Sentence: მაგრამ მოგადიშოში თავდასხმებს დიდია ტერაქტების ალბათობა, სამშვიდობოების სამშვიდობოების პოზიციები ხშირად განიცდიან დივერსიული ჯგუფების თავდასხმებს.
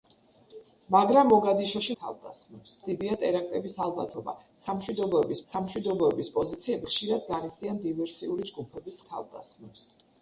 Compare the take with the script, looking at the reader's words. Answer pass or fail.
pass